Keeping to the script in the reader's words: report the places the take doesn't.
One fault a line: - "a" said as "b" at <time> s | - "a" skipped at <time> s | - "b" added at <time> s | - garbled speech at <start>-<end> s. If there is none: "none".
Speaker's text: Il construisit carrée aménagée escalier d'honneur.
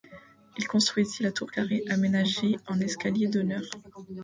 - "la tour" added at 1.2 s
- "en" added at 2.7 s